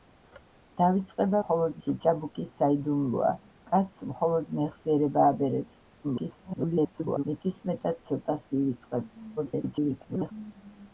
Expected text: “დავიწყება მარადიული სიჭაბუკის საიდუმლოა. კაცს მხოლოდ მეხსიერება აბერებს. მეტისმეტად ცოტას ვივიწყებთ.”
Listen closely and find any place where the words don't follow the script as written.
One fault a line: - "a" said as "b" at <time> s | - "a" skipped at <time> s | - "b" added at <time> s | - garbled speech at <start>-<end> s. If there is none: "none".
- "მარადიული" said as "მხოლოდ" at 1.4 s
- garbled speech at 6.0-7.2 s
- garbled speech at 9.4-10.3 s